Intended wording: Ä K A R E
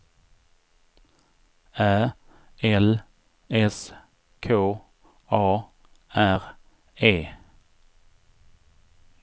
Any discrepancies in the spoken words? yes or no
yes